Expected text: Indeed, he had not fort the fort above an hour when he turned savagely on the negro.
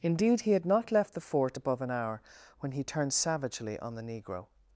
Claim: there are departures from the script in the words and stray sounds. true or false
true